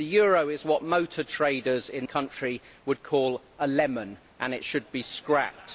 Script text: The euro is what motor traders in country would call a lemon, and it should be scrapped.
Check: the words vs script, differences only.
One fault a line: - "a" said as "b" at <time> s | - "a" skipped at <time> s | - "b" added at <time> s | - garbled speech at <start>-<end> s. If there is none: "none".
none